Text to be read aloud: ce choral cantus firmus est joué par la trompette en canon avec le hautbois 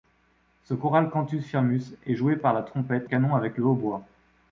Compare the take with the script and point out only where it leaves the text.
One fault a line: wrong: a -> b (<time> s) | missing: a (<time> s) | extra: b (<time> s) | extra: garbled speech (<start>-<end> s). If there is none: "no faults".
missing: en (3.1 s)